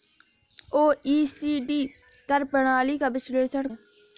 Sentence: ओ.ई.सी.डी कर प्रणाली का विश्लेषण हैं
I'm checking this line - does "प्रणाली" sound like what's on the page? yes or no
yes